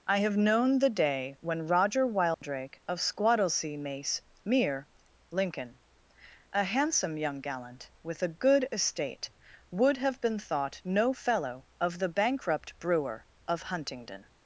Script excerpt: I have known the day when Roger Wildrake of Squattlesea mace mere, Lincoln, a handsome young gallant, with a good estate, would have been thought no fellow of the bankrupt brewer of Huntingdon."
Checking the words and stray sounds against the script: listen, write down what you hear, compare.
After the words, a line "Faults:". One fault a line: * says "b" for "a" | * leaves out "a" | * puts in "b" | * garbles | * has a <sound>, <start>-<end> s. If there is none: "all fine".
I have known the day when Roger Wildrake of Squattlesea mace mere, Lincoln, a handsome young gallant, with a good estate, would have been thought no fellow of the bankrupt brewer of Huntingdon."
Faults:
* has a dropout, 2.3-2.4 s